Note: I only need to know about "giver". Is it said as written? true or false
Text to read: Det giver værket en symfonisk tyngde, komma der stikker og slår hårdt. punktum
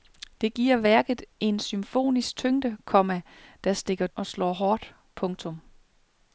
true